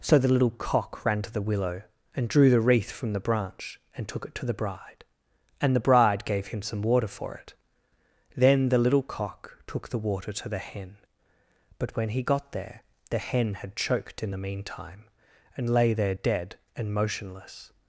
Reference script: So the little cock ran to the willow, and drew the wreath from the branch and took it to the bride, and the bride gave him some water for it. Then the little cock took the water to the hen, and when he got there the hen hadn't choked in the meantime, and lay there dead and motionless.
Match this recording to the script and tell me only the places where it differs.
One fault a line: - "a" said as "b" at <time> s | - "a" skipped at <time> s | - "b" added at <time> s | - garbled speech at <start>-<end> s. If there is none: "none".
- "and" said as "but" at 11.8 s
- "hadn't" said as "had" at 13.6 s